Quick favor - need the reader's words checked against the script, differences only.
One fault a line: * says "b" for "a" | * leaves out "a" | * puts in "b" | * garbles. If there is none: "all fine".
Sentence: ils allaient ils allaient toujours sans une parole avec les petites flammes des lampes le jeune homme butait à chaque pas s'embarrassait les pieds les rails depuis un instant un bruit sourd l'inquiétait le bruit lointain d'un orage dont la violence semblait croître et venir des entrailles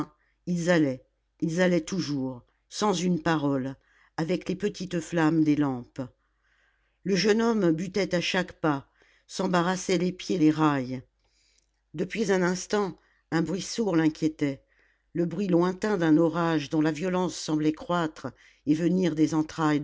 all fine